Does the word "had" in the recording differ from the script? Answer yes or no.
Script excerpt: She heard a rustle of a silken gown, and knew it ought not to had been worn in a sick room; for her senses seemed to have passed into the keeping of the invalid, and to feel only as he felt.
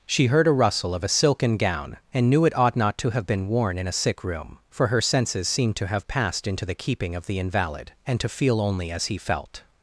yes